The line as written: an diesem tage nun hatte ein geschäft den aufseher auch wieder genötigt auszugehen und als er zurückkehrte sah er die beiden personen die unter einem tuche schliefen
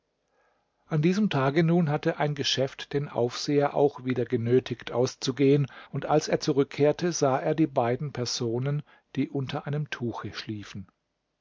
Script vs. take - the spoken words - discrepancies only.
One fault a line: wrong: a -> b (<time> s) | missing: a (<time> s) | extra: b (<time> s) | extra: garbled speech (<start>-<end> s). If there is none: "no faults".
no faults